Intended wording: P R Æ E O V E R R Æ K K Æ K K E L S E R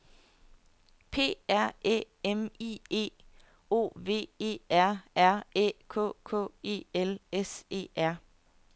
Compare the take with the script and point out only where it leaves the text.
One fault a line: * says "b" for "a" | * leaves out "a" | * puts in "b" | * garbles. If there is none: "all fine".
* puts in "M I"
* leaves out "Æ K K"